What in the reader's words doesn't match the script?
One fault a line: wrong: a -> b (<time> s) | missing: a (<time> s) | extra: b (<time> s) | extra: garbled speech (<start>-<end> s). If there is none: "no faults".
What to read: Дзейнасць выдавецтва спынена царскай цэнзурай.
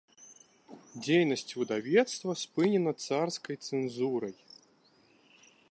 no faults